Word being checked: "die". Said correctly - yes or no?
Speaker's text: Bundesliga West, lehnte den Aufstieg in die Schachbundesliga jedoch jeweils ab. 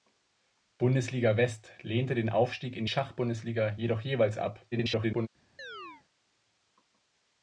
no